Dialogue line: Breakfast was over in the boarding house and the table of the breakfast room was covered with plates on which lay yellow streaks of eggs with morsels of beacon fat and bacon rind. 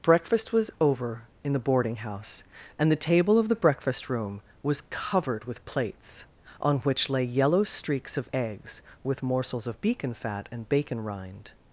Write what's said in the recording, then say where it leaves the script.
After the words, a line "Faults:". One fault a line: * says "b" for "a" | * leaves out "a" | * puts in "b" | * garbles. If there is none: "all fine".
Breakfast was over in the boarding house and the table of the breakfast room was covered with plates on which lay yellow streaks of eggs with morsels of beacon fat and bacon rind.
Faults:
all fine